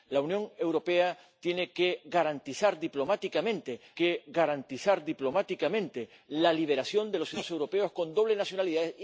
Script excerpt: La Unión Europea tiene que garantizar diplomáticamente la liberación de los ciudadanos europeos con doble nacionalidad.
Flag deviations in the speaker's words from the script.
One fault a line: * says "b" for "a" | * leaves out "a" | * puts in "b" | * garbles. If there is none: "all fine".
* puts in "que garantizar diplomáticamente"